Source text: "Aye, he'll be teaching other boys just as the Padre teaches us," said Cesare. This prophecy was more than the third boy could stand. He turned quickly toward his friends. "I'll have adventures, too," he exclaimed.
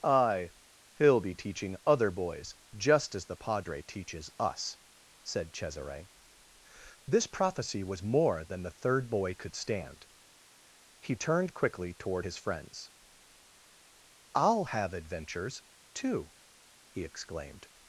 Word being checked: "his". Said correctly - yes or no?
yes